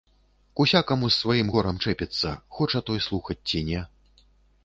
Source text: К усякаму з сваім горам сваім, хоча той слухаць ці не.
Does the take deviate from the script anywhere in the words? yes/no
yes